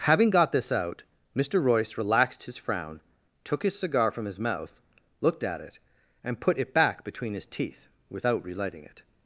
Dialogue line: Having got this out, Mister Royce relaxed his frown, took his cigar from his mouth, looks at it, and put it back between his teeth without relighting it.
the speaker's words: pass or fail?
fail